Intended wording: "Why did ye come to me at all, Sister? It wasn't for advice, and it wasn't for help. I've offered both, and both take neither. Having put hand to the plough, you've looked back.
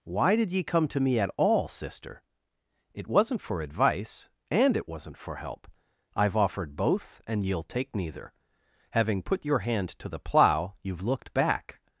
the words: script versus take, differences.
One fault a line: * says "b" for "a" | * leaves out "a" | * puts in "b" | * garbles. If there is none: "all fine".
* says "ye'll" for "both"
* puts in "your"